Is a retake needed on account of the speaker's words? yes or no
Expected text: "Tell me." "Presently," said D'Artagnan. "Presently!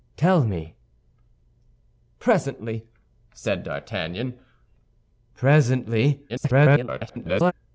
yes